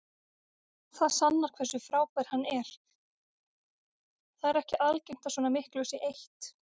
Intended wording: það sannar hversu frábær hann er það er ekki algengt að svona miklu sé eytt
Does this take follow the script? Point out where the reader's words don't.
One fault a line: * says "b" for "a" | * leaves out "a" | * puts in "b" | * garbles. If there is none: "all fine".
all fine